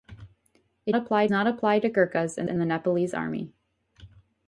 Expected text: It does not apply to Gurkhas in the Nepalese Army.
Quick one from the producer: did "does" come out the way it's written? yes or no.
no